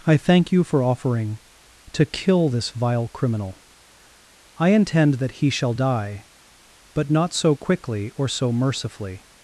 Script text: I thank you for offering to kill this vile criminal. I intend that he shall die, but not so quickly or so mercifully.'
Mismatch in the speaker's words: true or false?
false